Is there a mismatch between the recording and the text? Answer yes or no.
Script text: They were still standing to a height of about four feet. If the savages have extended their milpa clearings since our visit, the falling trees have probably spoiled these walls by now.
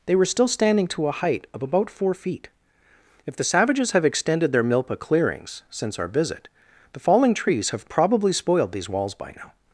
no